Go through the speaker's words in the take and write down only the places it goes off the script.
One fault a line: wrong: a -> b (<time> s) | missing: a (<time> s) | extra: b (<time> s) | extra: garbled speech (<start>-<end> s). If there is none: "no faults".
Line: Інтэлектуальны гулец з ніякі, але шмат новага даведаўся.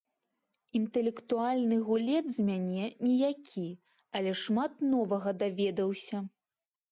extra: мяне (2.5 s)